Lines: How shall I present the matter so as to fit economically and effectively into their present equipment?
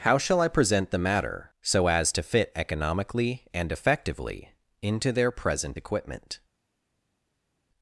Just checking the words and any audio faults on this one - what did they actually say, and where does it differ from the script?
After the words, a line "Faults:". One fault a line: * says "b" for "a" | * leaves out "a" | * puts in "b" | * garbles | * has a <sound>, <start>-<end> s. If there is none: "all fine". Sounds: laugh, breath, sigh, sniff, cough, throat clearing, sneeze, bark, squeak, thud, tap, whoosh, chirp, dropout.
How shall I present the matter so as to fit economically and effectively into their present equipment?
Faults:
all fine